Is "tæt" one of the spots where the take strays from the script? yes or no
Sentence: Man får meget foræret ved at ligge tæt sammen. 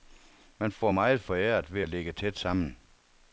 no